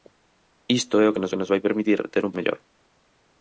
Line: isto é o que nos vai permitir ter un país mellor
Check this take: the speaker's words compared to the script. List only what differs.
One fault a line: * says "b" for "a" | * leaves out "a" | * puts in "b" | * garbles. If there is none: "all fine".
* puts in "que nos"
* leaves out "país"